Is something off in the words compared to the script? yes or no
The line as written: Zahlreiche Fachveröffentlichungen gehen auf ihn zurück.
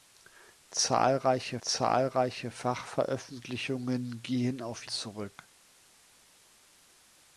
yes